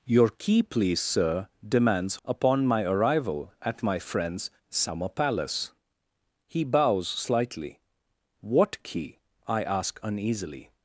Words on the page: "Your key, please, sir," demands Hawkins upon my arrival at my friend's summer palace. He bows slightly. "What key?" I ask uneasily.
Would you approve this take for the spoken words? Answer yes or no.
no